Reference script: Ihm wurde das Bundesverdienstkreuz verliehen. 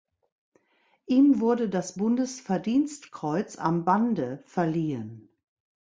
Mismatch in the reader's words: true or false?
true